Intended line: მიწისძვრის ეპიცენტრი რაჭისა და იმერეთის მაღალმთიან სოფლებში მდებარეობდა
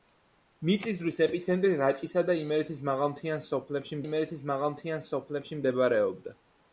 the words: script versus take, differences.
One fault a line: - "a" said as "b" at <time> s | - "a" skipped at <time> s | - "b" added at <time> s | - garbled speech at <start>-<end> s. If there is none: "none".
- "იმერეთის მაღალმთიან სოფლებში" added at 4.0 s